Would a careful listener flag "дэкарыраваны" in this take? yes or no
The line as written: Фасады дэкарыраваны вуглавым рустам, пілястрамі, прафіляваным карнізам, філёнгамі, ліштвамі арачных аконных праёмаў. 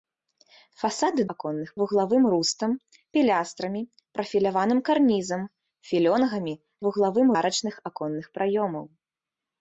yes